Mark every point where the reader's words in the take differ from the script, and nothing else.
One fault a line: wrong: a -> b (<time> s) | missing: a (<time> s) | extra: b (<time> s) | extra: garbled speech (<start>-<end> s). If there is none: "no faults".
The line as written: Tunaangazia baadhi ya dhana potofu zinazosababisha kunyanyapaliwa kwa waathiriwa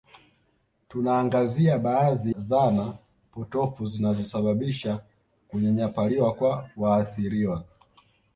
missing: ya (2.4 s)